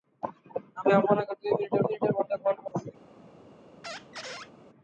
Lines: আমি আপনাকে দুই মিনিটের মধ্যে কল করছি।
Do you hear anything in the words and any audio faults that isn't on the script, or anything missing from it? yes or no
yes